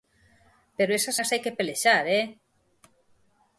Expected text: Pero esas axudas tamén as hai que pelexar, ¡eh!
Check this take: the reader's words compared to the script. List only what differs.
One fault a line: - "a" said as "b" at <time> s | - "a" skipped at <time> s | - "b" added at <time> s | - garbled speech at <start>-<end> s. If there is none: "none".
- "axudas tamén" skipped at 1.2 s